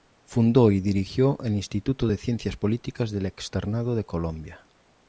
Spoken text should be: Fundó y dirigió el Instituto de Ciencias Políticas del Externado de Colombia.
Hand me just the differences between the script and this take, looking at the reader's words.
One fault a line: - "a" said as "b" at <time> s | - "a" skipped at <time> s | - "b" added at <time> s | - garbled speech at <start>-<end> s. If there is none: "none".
none